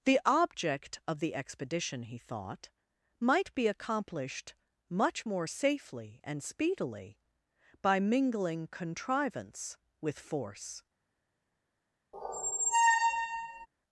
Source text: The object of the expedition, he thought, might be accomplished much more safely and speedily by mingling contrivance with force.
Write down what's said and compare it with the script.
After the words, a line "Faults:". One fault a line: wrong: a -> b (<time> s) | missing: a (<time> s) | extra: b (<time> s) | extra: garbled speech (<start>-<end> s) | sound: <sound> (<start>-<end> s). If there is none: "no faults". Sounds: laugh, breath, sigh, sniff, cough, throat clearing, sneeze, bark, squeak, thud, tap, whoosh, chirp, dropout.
The object of the expedition, he thought, might be accomplished much more safely and speedily by mingling contrivance with force.
Faults:
sound: squeak (12.1-13.7 s)